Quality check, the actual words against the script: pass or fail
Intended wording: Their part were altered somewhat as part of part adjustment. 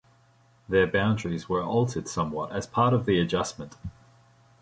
fail